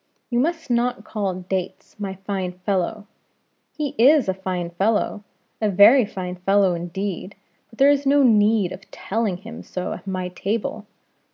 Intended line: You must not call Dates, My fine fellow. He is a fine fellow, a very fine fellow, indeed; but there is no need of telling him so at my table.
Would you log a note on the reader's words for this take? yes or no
no